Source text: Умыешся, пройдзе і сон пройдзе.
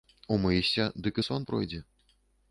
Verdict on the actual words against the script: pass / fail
fail